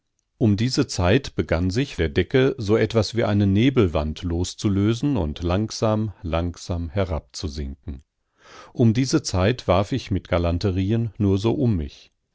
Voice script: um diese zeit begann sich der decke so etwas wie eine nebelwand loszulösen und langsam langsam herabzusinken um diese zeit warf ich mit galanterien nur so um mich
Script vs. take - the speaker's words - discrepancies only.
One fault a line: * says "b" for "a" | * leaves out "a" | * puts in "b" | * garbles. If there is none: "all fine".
all fine